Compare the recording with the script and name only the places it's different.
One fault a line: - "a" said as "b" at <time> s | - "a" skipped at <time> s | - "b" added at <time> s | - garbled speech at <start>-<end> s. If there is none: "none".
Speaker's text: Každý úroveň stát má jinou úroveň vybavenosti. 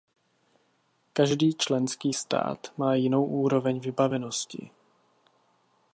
- "úroveň" said as "členský" at 1.5 s